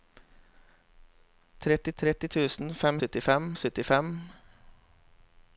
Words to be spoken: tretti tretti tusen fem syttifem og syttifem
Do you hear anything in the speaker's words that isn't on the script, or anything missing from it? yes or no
no